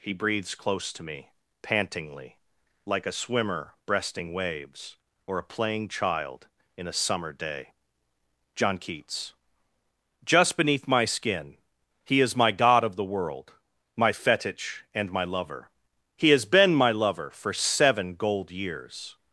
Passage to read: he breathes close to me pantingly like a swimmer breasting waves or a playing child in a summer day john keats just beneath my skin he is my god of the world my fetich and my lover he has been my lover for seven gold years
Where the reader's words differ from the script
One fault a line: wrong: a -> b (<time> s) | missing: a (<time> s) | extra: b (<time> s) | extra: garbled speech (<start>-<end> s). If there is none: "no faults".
no faults